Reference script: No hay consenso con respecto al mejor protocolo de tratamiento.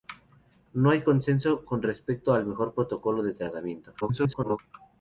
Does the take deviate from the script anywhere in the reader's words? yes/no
yes